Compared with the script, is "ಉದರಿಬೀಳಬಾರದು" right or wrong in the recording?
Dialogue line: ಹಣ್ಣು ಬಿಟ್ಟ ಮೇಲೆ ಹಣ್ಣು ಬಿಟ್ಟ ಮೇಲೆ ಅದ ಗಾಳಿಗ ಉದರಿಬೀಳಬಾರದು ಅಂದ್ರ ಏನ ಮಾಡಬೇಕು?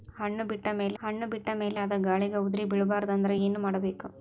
right